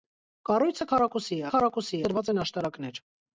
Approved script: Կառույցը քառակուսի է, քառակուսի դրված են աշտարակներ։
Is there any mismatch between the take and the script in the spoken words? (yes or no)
no